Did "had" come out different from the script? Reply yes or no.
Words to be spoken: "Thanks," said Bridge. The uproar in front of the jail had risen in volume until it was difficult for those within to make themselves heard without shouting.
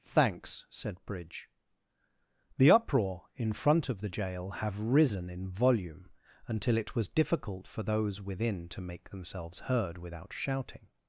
yes